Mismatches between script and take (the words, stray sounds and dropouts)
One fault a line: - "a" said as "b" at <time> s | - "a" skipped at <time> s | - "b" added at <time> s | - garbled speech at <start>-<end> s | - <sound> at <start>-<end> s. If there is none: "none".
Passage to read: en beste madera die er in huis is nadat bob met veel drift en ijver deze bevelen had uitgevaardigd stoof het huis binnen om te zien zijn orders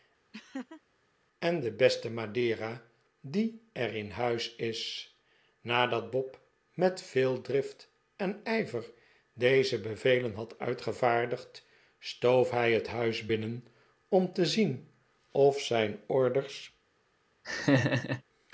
- laugh at 0.3-0.8 s
- "de" added at 1.6 s
- "hij" added at 12.5 s
- "of" added at 15.3 s
- laugh at 17.4-18.2 s